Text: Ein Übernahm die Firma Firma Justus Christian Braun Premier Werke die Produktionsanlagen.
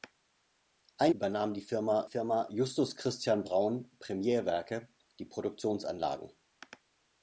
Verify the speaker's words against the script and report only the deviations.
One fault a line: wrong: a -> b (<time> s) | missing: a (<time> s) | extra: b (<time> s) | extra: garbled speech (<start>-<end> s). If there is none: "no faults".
no faults